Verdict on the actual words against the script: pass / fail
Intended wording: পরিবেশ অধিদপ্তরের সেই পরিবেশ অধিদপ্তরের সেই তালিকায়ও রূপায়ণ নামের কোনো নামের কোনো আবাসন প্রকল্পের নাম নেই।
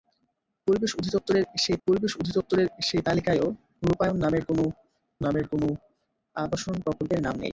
pass